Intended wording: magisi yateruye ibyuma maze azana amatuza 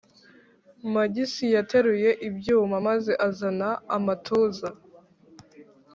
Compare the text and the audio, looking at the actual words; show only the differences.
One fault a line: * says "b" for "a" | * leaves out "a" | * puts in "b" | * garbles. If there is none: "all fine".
all fine